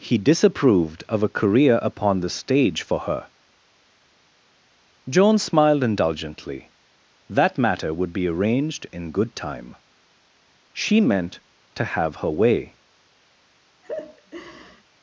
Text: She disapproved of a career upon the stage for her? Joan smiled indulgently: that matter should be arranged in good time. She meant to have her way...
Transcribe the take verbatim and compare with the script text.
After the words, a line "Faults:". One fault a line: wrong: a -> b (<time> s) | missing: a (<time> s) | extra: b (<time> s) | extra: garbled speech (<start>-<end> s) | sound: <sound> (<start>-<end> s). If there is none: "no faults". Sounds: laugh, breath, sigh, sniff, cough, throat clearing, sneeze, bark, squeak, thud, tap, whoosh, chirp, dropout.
He disapproved of a career upon the stage for her? Joan smiled indulgently: that matter would be arranged in good time. She meant to have her way...
Faults:
wrong: She -> He (0.0 s)
wrong: should -> would (7.9 s)
sound: laugh (13.8-14.8 s)